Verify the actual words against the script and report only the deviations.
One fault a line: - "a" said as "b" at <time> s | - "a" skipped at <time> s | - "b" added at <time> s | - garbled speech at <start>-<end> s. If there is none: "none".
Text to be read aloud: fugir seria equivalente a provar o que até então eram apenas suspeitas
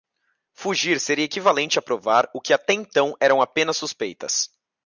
none